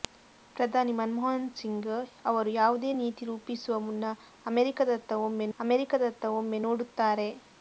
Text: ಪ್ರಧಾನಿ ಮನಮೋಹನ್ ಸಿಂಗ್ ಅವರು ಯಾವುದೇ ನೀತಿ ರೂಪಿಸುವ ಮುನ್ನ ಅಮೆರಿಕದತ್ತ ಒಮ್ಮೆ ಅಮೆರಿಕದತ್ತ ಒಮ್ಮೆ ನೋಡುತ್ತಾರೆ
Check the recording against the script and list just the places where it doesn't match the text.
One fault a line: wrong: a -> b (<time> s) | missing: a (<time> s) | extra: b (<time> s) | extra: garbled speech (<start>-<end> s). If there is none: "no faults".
no faults